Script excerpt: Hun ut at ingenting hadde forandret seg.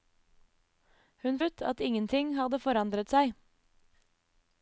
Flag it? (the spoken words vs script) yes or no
no